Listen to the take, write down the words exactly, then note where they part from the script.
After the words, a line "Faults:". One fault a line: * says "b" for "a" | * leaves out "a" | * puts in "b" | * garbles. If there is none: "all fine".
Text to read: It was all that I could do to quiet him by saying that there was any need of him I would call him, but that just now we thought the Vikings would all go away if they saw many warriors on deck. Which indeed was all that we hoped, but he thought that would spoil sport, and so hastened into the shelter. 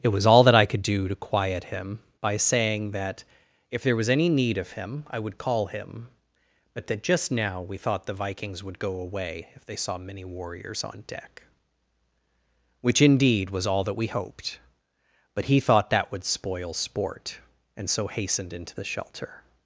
It was all that I could do to quiet him by saying that if there was any need of him I would call him, but that just now we thought the Vikings would go away if they saw many warriors on deck. Which indeed was all that we hoped, but he thought that would spoil sport, and so hastened into the shelter.
Faults:
* puts in "if"
* leaves out "all"